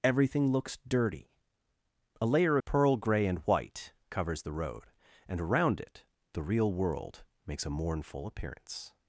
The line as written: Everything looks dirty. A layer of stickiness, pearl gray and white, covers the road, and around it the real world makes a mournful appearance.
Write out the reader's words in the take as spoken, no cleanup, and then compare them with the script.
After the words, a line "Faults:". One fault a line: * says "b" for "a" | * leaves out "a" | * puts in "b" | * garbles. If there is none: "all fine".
Everything looks dirty. A layer pearl gray and white, covers the road, and around it the real world makes a mournful appearance.
Faults:
* leaves out "of stickiness"